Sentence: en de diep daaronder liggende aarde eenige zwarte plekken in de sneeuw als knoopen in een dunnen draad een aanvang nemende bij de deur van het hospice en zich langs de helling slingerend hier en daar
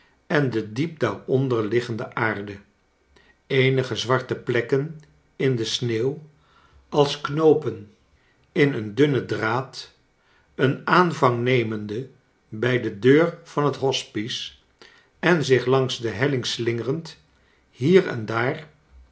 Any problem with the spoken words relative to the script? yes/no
no